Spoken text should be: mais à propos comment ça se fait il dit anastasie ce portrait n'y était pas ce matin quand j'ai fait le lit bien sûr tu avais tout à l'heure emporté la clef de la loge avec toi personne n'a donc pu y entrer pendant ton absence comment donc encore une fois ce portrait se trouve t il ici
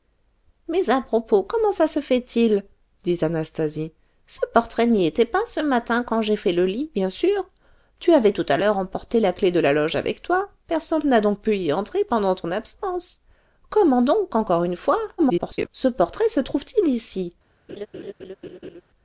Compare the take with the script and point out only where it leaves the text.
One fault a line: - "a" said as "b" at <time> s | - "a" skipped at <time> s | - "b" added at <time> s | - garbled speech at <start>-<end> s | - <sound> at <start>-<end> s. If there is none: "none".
- garbled speech at 15.2-15.7 s
- laugh at 17.7-18.8 s